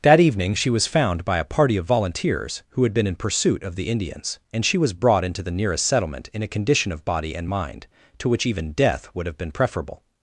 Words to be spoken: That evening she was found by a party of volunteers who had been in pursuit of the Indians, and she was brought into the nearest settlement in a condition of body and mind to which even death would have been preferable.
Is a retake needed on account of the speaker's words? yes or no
no